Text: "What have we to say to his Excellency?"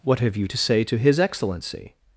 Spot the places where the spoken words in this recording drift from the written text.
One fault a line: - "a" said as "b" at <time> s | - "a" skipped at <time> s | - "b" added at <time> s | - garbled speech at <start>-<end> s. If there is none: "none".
- "we" said as "you" at 0.3 s